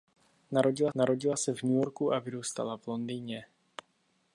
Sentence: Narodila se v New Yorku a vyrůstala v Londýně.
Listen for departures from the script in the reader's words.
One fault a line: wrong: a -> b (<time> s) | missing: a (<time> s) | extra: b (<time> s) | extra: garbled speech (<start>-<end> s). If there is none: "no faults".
extra: narodila (0.9 s)